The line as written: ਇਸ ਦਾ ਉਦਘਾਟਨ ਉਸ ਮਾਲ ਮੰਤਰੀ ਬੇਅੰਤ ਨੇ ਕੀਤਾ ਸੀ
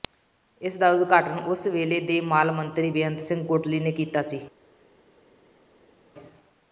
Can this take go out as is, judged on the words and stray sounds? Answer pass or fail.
fail